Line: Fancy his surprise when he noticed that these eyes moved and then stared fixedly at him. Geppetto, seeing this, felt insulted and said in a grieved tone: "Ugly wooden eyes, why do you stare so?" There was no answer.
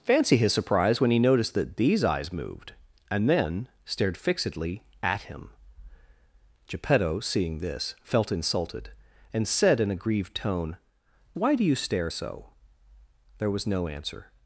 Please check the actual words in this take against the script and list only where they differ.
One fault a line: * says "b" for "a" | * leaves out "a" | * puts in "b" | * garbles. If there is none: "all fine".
* leaves out "Ugly wooden eyes"